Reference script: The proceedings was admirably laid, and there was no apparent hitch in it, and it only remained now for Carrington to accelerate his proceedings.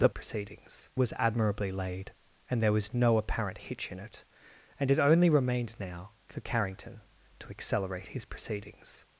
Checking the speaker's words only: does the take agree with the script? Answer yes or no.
yes